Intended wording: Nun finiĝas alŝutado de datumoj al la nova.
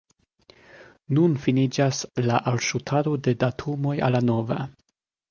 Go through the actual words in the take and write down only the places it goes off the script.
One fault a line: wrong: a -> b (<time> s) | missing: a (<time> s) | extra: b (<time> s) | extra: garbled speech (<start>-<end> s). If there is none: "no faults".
extra: la (2.3 s)